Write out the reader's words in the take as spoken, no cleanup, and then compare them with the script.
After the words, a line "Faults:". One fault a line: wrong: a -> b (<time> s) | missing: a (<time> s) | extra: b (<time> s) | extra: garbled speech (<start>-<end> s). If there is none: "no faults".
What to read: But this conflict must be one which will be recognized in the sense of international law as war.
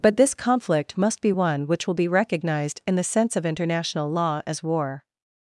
But this conflict must be one which will be recognized in the sense of international law as war.
Faults:
no faults